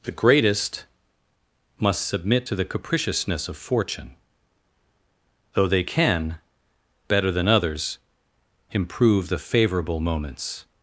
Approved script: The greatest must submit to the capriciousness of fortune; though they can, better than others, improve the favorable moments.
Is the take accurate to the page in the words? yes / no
yes